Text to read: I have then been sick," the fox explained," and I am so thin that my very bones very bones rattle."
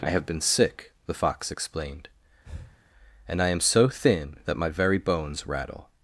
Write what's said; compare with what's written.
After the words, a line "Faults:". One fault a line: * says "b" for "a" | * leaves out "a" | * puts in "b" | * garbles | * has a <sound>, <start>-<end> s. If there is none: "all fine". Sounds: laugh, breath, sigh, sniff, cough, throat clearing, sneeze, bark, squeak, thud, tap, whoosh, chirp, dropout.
I have been sick," the fox explained," and I am so thin that my very bones rattle."
Faults:
* leaves out "then"
* has a breath, 2.5-2.8 s
* leaves out "very bones"